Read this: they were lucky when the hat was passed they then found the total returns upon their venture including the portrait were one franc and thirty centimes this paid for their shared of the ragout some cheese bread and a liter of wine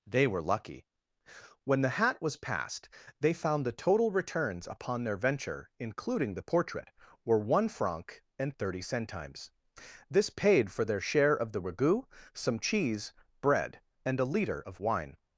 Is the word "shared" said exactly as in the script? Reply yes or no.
no